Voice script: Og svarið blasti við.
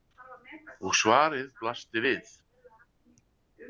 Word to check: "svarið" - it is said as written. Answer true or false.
true